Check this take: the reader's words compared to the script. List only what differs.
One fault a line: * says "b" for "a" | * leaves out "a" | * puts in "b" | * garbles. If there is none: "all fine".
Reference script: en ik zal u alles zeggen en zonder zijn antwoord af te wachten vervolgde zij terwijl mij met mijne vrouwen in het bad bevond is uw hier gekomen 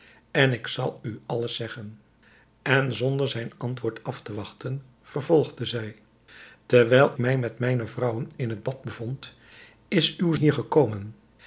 all fine